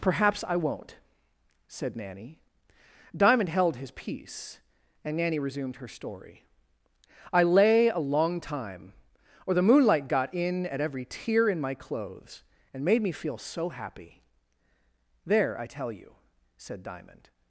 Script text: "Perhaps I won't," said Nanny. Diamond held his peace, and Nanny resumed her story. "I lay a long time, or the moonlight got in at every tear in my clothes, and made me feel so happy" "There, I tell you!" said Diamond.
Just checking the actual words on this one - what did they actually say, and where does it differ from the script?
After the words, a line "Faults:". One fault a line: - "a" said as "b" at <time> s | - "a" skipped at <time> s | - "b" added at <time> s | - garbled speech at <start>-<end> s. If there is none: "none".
"Perhaps I won't," said Nanny. Diamond held his peace, and Nanny resumed her story. "I lay a long time, or the moonlight got in at every tear in my clothes, and made me feel so happy" "There, I tell you!" said Diamond.
Faults:
none